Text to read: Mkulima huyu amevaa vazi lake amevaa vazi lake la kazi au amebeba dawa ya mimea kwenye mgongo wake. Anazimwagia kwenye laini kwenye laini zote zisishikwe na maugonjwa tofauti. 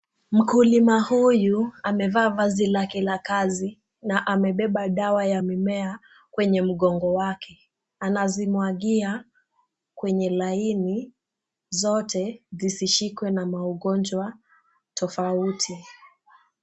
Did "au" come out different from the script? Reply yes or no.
yes